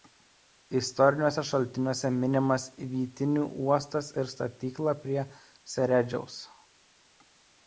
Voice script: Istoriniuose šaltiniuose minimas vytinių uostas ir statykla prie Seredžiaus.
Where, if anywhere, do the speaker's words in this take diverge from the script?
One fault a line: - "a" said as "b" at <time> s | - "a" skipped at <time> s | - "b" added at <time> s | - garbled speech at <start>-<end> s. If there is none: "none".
none